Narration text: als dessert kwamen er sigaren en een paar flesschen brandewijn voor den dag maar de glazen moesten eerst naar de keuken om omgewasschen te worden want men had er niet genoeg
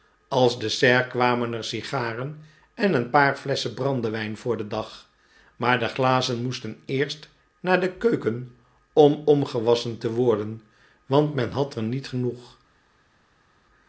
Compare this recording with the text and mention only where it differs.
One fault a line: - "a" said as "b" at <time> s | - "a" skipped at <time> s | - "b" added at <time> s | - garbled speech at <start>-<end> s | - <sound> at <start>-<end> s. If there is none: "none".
none